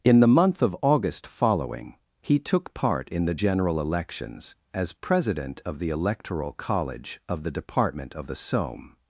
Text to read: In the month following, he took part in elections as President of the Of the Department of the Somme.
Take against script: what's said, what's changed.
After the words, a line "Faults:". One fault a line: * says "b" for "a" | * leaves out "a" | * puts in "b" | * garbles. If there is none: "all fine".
In the month of August following, he took part in the general elections as President of the Electoral College of the Department of the Somme.
Faults:
* puts in "of August"
* puts in "the general"
* puts in "Electoral College"